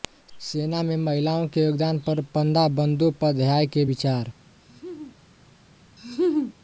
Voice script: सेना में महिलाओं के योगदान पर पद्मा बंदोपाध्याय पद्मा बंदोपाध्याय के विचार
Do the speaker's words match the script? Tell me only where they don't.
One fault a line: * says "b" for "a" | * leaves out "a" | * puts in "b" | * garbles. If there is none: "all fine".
* leaves out "पद्मा बंदोपाध्याय"